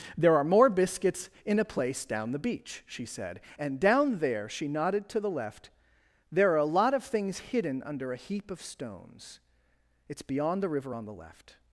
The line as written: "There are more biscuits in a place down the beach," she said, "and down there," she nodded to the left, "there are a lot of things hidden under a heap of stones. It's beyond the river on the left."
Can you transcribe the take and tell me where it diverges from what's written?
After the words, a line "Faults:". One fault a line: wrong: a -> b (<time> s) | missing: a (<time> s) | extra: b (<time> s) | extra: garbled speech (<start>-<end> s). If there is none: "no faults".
"There are more biscuits in a place down the beach," she said, "and down there," she nodded to the left, "there are a lot of things hidden under a heap of stones. It's beyond the river on the left."
Faults:
no faults